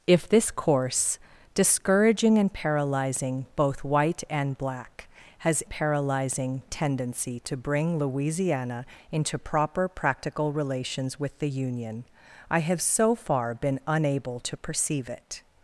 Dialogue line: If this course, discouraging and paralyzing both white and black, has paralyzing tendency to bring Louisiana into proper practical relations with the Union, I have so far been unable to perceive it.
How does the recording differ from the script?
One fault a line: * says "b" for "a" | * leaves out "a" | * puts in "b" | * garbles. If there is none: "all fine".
all fine